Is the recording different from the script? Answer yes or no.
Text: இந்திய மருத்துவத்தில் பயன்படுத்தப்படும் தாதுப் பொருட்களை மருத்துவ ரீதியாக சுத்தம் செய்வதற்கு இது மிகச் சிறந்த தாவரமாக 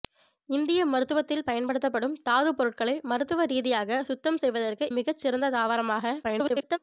yes